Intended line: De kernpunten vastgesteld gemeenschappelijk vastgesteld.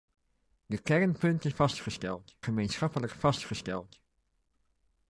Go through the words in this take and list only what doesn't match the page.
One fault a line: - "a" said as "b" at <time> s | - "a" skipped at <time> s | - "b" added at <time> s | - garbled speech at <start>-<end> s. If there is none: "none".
none